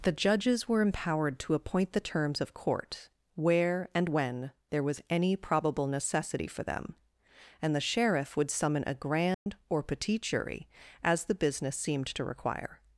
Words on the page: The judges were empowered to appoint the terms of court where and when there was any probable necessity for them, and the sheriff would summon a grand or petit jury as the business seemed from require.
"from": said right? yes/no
no